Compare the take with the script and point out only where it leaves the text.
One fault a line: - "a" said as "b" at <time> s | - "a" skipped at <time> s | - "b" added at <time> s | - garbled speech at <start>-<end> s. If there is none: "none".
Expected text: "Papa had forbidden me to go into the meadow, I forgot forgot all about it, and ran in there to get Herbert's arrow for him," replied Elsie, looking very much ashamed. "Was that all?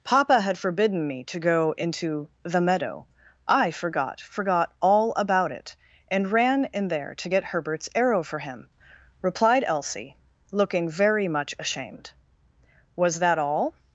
none